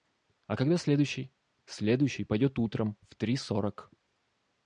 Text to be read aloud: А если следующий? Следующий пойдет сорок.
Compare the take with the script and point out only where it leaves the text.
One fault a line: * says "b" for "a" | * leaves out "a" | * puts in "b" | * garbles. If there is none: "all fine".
* says "когда" for "если"
* puts in "утром в три"